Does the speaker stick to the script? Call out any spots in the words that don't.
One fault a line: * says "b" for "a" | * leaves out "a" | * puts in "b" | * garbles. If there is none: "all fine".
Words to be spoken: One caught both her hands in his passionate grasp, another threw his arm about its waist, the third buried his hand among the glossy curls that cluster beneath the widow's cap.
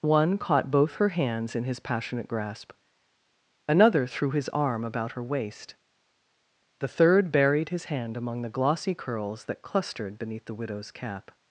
* says "her" for "its"
* says "clustered" for "cluster"